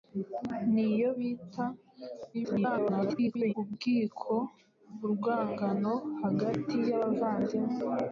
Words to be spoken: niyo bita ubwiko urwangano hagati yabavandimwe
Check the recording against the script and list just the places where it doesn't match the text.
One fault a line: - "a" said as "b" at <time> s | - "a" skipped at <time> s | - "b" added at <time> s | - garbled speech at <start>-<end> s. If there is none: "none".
- garbled speech at 2.3-3.5 s